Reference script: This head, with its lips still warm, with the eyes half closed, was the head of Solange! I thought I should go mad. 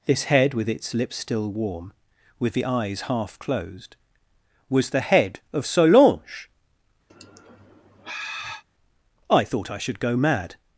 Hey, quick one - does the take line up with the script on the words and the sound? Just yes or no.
no